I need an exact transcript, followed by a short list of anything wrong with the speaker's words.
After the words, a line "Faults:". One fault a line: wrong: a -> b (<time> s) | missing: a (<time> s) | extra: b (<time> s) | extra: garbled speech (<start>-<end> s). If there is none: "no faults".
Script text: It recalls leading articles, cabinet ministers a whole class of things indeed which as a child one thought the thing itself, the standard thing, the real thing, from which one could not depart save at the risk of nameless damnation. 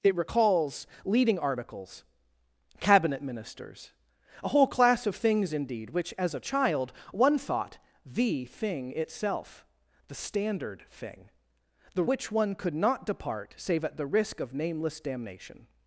It recalls leading articles, cabinet ministers a whole class of things indeed which as a child one thought the thing itself, the standard thing, the which one could not depart save at the risk of nameless damnation.
Faults:
missing: real thing from (12.1 s)